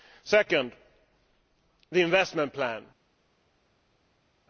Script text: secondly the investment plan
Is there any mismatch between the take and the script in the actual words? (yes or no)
no